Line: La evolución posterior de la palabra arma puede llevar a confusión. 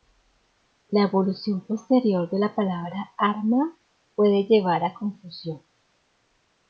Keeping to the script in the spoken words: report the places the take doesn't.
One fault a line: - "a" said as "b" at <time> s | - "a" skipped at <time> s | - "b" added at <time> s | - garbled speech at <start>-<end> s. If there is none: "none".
none